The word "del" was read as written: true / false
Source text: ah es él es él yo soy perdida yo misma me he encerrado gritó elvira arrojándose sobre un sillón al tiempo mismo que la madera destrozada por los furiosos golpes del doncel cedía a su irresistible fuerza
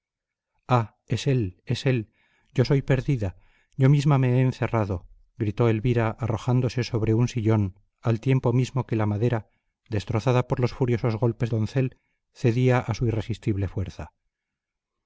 false